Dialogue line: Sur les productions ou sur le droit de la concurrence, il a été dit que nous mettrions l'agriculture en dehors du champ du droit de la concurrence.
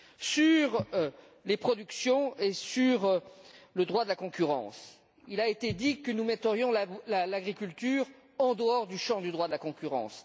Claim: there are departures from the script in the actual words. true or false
true